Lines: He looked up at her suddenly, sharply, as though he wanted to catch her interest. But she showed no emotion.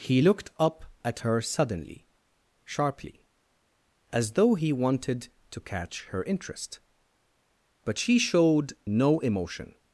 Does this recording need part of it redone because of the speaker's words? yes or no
no